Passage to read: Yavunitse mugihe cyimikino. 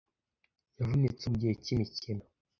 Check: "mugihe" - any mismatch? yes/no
no